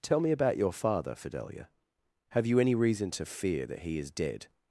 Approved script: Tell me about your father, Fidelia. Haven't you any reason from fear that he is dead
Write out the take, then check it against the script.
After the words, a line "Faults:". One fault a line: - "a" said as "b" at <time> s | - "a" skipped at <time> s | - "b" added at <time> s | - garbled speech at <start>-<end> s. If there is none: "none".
Tell me about your father, Fidelia. Have you any reason to fear that he is dead
Faults:
- "Haven't" said as "Have" at 2.3 s
- "from" said as "to" at 3.1 s